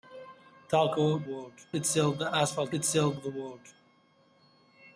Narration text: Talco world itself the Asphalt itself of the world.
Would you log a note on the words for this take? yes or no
no